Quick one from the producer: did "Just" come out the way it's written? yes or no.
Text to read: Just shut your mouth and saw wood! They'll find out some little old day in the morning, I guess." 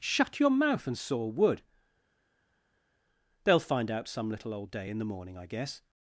no